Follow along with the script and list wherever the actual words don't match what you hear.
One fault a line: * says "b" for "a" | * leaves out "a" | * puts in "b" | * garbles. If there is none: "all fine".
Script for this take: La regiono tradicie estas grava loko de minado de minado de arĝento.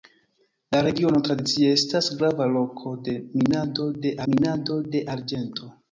all fine